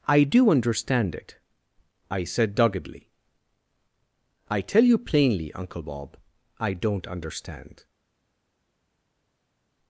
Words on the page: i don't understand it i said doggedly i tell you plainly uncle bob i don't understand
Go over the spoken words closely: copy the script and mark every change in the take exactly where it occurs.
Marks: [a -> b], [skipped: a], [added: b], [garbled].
i [don't -> do] understand it i said doggedly i tell you plainly uncle bob i don't understand